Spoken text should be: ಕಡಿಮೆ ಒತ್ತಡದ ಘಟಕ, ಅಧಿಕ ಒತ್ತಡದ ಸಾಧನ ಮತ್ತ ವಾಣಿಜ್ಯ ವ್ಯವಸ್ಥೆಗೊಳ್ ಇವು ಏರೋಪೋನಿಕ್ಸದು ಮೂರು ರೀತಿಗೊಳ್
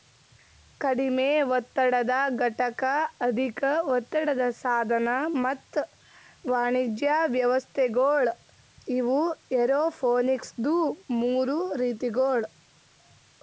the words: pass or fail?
pass